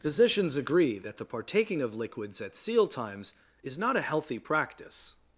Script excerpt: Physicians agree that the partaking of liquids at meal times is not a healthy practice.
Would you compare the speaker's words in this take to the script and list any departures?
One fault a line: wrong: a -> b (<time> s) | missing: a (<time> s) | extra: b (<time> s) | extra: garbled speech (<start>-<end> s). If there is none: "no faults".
wrong: meal -> seal (2.5 s)